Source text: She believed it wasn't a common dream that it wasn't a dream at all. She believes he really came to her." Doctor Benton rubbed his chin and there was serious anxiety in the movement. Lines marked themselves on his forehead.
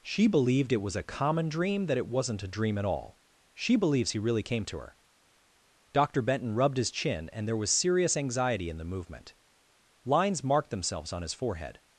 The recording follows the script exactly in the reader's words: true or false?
false